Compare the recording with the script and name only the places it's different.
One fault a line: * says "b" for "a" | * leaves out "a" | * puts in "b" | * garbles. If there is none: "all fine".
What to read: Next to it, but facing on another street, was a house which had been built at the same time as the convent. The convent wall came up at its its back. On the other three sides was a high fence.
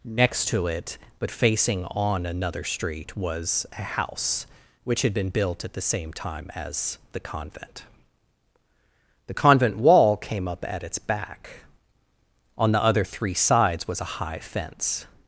* leaves out "its"